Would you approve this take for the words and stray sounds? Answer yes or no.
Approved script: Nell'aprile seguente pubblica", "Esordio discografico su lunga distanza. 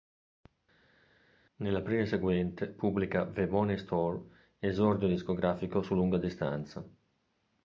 no